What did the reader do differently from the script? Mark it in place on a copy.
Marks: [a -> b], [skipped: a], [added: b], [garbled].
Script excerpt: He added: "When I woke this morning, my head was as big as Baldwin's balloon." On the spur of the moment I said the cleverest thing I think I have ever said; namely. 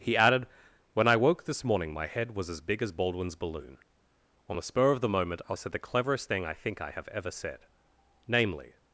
He added: "When I woke this morning, my head was as big as Baldwin's balloon." On the spur of the moment I said the cleverest thing I think I have ever said; namely.